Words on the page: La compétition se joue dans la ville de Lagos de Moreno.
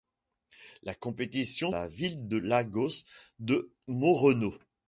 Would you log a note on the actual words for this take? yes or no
yes